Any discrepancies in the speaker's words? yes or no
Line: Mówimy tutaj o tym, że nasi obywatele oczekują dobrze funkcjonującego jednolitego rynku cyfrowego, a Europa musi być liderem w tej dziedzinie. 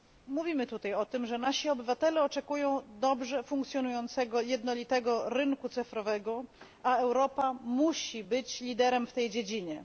no